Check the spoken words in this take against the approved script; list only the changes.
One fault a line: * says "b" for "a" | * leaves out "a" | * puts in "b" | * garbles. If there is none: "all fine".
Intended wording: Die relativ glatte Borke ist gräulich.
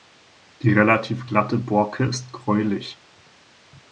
all fine